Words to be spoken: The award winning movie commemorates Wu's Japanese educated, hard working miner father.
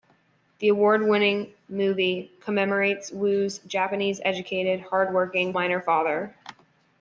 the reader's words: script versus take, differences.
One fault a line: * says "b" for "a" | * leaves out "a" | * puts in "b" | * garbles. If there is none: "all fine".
all fine